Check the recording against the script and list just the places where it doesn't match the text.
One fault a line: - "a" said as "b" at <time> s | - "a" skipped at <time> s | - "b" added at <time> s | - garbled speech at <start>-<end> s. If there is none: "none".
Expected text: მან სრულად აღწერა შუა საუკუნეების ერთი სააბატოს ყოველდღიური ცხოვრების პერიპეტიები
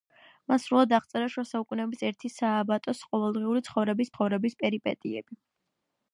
- "ცხოვრების" added at 4.1 s